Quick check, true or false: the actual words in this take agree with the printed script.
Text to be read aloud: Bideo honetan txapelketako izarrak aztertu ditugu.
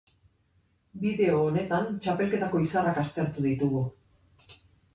true